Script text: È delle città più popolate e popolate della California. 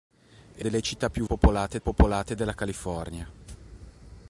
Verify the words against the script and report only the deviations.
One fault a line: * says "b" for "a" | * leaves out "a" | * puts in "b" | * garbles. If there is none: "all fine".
all fine